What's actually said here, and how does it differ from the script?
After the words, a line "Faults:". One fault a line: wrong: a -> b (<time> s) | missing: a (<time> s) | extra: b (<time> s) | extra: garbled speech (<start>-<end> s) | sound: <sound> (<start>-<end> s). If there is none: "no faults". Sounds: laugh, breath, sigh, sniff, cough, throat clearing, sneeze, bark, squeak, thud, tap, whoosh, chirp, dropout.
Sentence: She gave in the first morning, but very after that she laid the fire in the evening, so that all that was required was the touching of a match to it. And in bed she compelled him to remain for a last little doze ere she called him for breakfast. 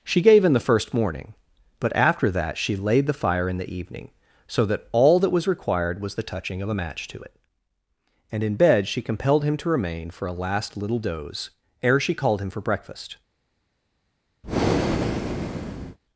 She gave in the first morning, but after that she laid the fire in the evening, so that all that was required was the touching of a match to it. And in bed she compelled him to remain for a last little doze ere she called him for breakfast.
Faults:
missing: very (1.9 s)
sound: breath (14.4-16.0 s)